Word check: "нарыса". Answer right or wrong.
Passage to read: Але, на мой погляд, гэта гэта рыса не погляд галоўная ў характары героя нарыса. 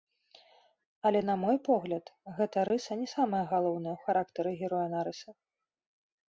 right